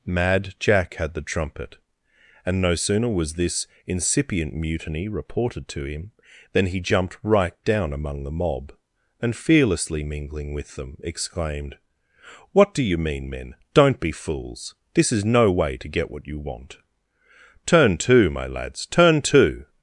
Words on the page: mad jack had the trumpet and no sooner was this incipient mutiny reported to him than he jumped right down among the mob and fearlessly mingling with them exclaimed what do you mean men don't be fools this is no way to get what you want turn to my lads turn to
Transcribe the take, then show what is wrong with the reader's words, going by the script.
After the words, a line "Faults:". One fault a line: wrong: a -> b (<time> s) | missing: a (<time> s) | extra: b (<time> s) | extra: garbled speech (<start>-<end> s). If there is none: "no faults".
mad jack had the trumpet and no sooner was this incipient mutiny reported to him than he jumped right down among the mob and fearlessly mingling with them exclaimed what do you mean men don't be fools this is no way to get what you want turn to my lads turn to
Faults:
no faults